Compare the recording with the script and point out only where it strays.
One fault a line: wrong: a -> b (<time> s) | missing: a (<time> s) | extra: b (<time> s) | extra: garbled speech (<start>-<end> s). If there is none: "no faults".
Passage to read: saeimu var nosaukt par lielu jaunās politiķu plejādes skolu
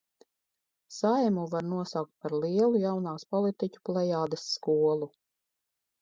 no faults